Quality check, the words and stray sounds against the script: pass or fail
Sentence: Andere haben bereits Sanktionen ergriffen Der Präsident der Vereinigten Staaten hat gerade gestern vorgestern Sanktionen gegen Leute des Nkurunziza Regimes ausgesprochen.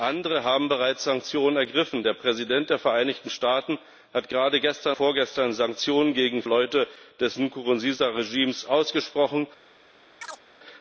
fail